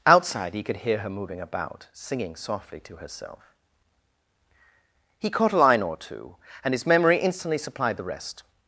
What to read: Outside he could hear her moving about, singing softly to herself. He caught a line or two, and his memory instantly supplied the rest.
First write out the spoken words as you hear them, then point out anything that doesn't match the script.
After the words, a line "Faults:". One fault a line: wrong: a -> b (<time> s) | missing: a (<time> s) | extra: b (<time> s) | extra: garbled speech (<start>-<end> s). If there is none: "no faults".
Outside he could hear her moving about, singing softly to herself. He caught a line or two, and his memory instantly supplied the rest.
Faults:
no faults